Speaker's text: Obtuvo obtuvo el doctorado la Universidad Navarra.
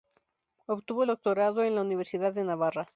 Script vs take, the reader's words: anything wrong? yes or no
yes